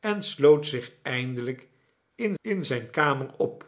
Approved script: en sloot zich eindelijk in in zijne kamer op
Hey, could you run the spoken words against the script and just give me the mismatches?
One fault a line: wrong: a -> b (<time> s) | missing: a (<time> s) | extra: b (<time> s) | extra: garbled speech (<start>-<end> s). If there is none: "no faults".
no faults